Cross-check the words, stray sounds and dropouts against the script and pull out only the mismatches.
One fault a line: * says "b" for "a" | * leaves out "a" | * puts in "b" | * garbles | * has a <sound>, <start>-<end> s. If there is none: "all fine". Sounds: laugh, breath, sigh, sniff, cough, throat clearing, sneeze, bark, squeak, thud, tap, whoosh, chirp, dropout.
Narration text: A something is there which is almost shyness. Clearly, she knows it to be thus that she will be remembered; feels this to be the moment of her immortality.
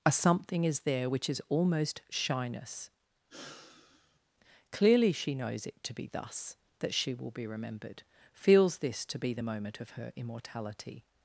* has a sigh, 3.3-4.2 s